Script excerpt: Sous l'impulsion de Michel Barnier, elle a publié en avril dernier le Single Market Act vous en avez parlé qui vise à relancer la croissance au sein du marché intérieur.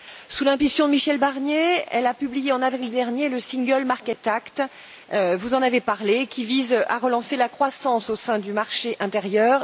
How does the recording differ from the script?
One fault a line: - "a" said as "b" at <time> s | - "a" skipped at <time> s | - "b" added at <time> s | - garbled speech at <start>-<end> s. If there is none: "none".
none